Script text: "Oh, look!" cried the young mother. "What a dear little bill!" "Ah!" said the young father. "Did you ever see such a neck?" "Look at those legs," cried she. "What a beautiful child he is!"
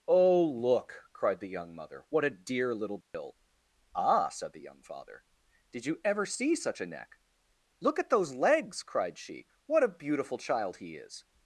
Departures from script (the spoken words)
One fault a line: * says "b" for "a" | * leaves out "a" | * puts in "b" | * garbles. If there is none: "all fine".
all fine